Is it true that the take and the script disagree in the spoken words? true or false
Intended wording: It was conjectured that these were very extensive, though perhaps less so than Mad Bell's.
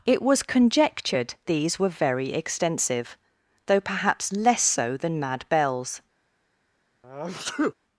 true